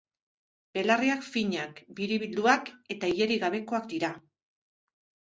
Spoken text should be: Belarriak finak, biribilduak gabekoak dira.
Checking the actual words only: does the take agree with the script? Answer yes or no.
no